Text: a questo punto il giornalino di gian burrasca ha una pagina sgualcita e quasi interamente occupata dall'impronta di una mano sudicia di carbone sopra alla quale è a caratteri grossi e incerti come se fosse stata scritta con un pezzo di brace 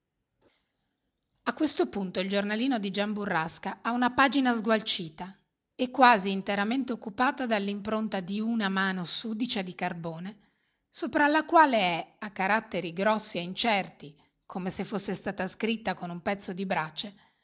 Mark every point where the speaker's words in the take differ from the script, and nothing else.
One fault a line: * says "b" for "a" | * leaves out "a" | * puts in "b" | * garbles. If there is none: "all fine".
all fine